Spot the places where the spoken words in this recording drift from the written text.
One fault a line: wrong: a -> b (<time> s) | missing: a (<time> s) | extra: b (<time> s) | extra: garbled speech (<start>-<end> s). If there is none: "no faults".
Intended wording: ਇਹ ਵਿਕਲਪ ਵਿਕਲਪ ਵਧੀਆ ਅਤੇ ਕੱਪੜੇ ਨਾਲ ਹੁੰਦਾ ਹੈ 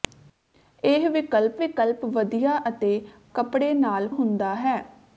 no faults